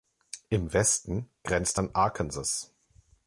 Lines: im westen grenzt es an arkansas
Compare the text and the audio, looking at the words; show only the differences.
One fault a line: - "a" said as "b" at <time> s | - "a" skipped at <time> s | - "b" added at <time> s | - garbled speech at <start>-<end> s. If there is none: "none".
- "es" skipped at 1.8 s